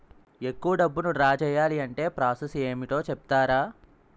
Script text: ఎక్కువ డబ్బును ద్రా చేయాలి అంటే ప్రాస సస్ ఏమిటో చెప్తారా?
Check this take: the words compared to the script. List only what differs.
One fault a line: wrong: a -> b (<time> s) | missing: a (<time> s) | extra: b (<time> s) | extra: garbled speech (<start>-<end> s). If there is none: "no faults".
no faults